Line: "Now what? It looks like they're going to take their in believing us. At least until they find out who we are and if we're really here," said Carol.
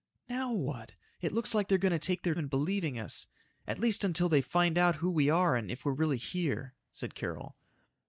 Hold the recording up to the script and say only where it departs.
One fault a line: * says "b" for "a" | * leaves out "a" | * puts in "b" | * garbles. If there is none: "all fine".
all fine